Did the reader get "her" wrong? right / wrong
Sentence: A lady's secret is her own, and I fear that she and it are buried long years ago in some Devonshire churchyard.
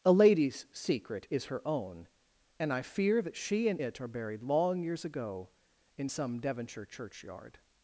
right